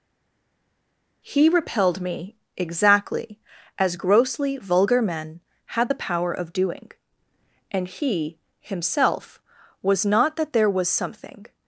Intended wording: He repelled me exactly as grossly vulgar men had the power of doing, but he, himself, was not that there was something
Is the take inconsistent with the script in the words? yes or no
yes